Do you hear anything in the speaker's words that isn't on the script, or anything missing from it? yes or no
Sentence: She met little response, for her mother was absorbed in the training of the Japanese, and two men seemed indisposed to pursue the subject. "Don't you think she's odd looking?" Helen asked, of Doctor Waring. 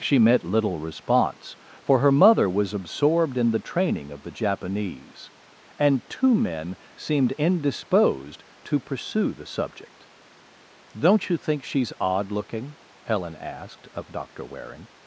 no